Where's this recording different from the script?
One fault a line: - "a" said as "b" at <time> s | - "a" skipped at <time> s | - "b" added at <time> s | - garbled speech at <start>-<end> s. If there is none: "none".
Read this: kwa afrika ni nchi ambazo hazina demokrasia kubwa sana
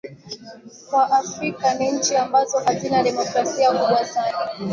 none